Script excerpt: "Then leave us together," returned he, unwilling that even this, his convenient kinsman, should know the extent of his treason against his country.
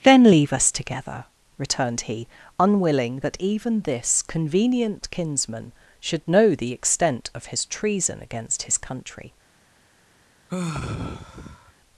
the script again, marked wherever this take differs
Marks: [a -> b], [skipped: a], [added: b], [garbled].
"Then leave us together," returned he, unwilling that even this, [skipped: his] convenient kinsman, should know the extent of his treason against his country.